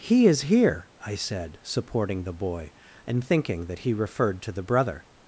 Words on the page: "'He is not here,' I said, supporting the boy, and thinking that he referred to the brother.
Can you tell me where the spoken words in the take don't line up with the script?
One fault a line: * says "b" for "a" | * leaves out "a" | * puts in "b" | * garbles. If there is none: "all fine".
* leaves out "not"